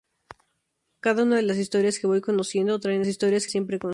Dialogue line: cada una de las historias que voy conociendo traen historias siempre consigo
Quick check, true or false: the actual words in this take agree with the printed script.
true